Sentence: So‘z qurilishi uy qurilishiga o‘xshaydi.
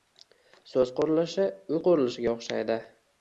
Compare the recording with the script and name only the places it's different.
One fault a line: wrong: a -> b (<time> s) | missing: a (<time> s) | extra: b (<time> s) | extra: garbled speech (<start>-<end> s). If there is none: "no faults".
no faults